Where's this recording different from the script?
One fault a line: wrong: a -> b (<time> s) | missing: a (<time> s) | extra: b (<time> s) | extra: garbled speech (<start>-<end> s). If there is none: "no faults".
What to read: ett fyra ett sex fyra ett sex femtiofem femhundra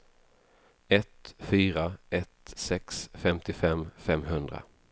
missing: fyra ett sex (3.1 s)